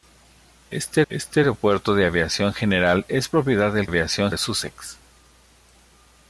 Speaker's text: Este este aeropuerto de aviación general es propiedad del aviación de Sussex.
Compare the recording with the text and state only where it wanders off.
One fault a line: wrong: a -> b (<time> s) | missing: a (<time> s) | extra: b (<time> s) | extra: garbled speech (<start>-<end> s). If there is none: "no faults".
no faults